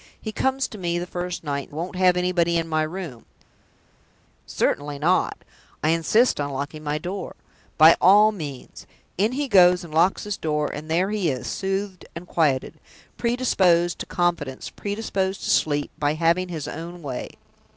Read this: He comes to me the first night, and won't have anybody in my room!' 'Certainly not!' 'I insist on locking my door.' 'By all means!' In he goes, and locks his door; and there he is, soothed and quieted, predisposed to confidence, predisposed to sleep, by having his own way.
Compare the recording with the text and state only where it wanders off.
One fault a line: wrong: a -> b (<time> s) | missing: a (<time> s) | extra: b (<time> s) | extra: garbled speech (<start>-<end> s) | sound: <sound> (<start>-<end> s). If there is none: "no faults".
no faults